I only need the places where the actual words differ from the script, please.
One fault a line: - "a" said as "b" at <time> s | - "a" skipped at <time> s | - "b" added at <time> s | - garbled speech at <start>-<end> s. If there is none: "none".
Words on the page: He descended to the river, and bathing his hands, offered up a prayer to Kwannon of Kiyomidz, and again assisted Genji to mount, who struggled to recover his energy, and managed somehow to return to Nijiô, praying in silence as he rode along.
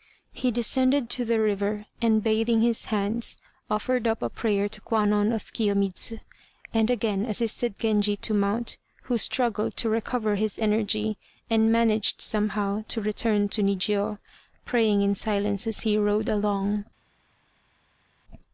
none